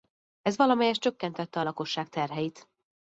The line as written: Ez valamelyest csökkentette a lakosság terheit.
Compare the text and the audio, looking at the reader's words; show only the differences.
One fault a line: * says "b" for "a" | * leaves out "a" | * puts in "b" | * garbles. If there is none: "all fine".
all fine